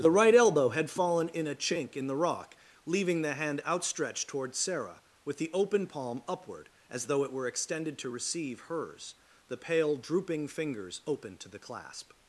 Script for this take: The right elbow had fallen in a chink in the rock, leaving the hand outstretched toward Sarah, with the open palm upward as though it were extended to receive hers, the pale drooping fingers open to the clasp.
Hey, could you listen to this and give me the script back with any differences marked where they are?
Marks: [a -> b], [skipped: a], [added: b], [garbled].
The right elbow had fallen in a chink in the rock, leaving the hand outstretched toward Sarah, with the open palm upward as though it were extended to receive hers, the pale drooping fingers open to the clasp.